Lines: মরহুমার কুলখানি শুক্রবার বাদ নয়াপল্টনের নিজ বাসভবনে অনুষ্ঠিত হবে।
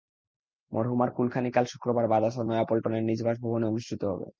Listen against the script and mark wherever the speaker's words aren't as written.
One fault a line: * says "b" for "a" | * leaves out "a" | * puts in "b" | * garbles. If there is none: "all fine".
* puts in "কাল"
* puts in "আসর"